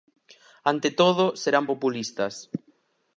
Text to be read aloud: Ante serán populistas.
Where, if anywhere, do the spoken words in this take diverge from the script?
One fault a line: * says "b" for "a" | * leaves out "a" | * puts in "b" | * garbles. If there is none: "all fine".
* puts in "todo"